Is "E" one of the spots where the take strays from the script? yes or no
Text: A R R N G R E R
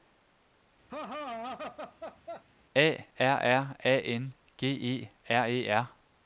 no